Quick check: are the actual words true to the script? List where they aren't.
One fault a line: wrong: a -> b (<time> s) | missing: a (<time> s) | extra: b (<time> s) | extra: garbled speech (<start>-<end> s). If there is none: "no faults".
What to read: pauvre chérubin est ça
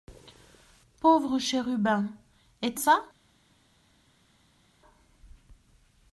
no faults